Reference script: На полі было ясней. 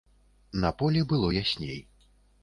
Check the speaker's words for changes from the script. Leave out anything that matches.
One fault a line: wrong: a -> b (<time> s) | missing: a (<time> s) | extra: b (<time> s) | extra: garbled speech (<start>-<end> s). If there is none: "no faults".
no faults